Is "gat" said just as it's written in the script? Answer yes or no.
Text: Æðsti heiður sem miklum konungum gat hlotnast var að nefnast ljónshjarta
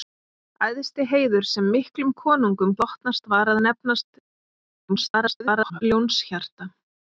no